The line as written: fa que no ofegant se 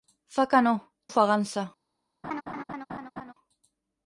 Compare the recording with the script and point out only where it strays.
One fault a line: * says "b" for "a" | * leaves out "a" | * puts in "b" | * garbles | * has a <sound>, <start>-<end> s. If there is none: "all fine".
* has a laugh, 2.2-3.3 s